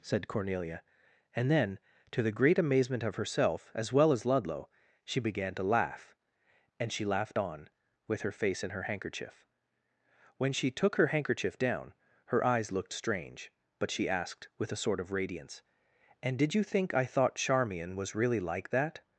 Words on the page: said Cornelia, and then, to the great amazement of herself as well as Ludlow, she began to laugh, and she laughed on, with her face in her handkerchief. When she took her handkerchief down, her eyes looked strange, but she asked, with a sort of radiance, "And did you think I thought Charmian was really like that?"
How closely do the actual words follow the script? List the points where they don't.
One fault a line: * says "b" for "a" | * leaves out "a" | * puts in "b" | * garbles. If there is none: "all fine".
all fine